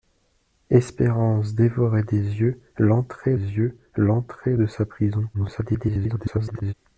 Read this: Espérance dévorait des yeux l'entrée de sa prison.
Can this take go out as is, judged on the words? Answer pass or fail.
fail